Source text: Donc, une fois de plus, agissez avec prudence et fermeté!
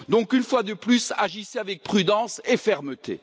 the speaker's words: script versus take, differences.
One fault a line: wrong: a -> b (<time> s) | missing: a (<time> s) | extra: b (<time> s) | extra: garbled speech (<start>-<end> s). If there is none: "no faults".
no faults